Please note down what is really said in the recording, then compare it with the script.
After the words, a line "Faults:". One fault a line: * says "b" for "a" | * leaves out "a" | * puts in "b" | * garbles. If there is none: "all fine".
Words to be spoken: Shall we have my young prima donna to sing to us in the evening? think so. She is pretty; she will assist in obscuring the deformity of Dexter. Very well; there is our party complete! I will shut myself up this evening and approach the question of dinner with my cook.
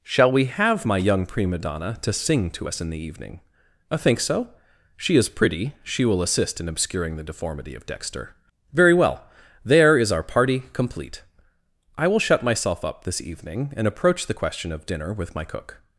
Shall we have my young prima donna to sing to us in the evening? I think so. She is pretty; she will assist in obscuring the deformity of Dexter. Very well; there is our party complete! I will shut myself up this evening and approach the question of dinner with my cook.
Faults:
* puts in "I"